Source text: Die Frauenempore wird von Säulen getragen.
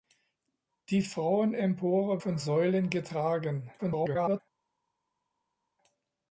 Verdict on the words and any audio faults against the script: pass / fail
fail